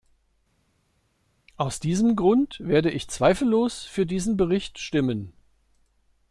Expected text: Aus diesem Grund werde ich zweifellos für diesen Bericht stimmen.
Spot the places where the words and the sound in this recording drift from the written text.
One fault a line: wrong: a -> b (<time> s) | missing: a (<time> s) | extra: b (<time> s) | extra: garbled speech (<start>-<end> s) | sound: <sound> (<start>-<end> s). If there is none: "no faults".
no faults